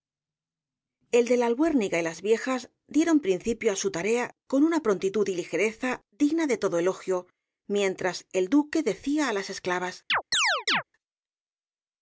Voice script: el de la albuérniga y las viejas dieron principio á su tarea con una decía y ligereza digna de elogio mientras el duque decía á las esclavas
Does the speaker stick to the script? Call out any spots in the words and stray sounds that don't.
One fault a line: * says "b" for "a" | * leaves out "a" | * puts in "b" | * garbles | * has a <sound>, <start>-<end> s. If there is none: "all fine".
* says "prontitud" for "decía"
* puts in "todo"
* has a chirp, 10.1-10.8 s